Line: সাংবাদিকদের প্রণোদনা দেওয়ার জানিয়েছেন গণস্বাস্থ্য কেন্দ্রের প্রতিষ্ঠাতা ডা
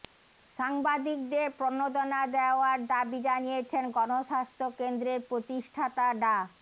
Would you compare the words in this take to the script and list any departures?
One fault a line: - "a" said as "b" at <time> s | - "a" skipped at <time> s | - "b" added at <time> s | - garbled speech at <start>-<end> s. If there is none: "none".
- "দাবি" added at 2.9 s